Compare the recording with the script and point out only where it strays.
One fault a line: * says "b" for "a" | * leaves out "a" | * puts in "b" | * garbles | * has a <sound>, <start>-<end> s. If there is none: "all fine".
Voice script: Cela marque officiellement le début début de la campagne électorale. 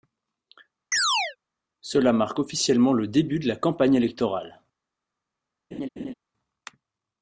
* has a chirp, 0.9-1.4 s
* leaves out "début"
* has a laugh, 5.7-6.1 s